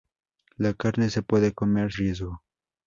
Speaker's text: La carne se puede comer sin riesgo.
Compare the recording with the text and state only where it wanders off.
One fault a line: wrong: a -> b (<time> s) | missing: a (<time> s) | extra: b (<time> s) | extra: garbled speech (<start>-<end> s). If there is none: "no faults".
missing: sin (1.9 s)